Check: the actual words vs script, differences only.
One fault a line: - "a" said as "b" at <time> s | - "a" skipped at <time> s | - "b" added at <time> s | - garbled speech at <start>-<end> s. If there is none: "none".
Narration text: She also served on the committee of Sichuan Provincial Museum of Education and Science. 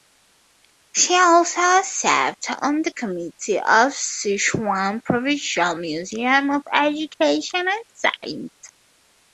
none